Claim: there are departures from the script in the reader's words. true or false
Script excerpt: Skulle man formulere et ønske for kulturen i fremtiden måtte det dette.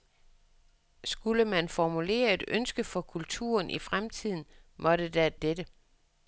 false